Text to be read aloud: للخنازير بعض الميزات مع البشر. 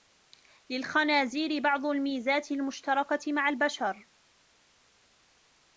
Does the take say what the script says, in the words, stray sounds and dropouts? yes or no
no